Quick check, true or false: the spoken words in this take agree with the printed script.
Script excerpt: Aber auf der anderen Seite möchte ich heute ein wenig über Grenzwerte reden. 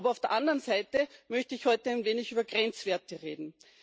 true